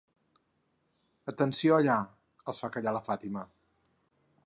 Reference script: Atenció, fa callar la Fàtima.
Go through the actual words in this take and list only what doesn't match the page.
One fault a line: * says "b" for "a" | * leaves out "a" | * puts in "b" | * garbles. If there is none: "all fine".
* puts in "allà els"